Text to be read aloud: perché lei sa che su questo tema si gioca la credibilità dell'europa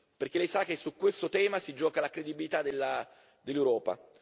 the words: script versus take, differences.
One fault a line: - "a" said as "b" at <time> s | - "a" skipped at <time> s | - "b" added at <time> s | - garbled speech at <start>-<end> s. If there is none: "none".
none